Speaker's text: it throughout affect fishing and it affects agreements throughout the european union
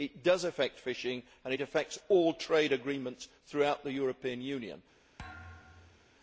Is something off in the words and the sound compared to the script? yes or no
yes